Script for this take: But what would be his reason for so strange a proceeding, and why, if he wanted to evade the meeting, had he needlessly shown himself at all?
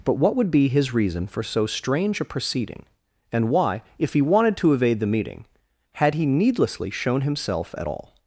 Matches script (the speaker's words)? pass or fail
pass